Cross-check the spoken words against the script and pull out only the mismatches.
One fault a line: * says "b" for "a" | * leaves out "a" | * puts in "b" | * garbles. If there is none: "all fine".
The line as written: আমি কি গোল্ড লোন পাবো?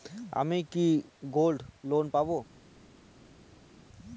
all fine